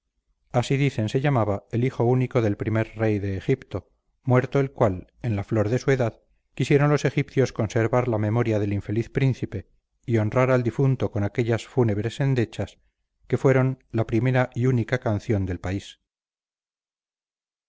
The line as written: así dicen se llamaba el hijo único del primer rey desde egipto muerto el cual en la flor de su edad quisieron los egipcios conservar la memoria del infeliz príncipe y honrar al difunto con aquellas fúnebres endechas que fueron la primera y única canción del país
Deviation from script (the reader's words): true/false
true